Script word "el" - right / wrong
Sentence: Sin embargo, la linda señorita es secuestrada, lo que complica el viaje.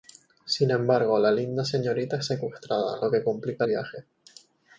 wrong